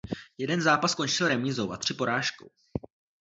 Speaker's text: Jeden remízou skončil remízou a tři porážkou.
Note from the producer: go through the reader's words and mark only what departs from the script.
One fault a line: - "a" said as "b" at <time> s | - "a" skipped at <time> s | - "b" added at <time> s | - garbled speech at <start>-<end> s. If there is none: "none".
- "remízou" said as "zápas" at 0.6 s